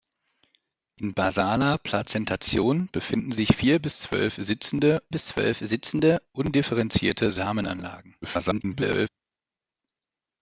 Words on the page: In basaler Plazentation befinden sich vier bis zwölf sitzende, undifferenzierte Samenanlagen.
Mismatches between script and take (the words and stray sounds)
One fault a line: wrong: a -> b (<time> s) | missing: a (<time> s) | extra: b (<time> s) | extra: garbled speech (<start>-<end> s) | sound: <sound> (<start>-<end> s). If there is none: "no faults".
extra: bis zwölf sitzende (5.1 s)
extra: garbled speech (8.2-9.1 s)